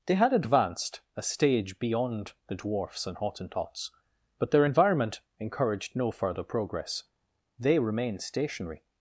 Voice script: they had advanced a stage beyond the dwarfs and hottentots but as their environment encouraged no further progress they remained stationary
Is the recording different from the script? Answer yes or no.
yes